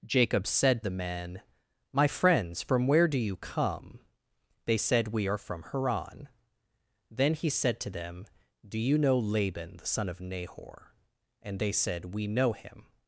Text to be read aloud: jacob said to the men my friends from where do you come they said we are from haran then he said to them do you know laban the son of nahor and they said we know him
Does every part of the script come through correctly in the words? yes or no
no